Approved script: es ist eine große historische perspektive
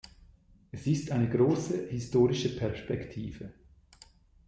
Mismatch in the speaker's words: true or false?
false